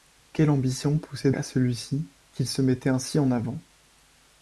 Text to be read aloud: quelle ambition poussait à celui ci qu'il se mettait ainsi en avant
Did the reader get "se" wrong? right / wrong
right